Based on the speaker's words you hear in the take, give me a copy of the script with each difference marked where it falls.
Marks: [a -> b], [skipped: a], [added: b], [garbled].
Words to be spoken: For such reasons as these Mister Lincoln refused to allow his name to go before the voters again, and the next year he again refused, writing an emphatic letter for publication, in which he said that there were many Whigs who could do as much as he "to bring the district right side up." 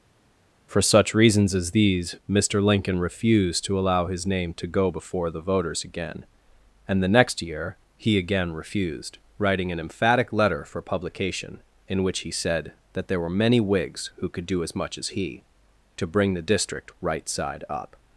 For such reasons as these Mister Lincoln refused to allow his name to go before the voters again, and the next year he again refused, writing an emphatic letter for publication, in which he said that there were many Whigs who could do as much as he "to bring the district right side up."